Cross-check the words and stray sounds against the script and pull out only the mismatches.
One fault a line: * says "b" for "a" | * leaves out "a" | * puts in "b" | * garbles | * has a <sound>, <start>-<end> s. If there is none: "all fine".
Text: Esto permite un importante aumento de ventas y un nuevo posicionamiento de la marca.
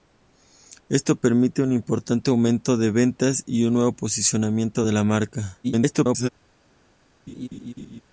* garbles
* has a laugh, 7.3-8.0 s